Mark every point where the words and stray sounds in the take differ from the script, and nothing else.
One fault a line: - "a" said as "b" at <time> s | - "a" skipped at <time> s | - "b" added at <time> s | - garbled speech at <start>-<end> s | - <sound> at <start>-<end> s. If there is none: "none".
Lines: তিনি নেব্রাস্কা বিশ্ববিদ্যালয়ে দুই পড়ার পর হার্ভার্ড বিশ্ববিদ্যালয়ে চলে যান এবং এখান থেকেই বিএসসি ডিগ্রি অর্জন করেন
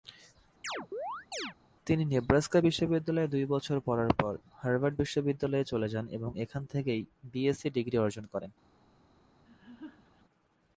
- chirp at 0.6-1.5 s
- "বছর" added at 3.4 s
- laugh at 9.4-10.2 s